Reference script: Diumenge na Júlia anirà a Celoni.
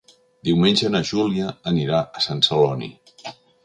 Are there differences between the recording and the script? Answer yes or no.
yes